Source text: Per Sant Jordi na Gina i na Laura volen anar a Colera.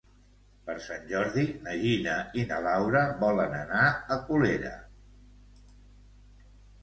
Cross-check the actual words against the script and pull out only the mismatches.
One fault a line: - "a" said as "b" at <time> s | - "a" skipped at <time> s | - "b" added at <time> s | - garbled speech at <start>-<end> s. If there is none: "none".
none